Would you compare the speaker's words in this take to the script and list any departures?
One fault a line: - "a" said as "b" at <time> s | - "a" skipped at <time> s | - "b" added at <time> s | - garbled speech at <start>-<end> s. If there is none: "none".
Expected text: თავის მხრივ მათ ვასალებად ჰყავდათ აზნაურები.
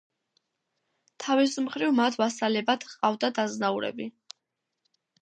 none